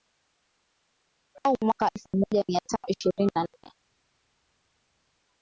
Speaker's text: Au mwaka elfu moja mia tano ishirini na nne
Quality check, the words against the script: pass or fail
pass